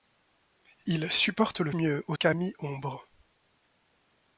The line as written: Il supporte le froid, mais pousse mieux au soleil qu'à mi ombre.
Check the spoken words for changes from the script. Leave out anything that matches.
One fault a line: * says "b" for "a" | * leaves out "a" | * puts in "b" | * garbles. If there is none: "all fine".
* leaves out "froid mais pousse"
* leaves out "soleil"